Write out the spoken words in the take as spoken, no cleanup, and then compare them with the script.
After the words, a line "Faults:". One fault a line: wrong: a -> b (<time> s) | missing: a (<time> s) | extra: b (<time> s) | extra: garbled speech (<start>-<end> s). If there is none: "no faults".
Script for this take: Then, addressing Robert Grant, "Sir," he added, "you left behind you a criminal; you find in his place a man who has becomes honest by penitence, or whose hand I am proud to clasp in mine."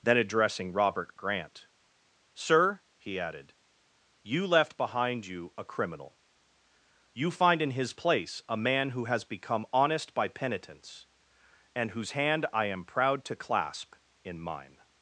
Then, addressing Robert Grant, "Sir," he added, "you left behind you a criminal; you find in his place a man who has become honest by penitence, and whose hand I am proud to clasp in mine."
Faults:
wrong: becomes -> become (9.2 s)
wrong: or -> and (11.7 s)